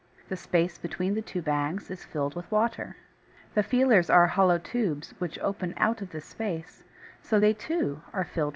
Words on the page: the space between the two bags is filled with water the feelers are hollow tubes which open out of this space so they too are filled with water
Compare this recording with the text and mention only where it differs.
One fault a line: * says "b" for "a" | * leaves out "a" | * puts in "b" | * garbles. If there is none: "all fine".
all fine